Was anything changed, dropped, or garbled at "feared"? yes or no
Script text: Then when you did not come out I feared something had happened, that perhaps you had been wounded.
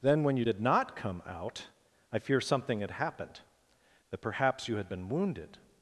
yes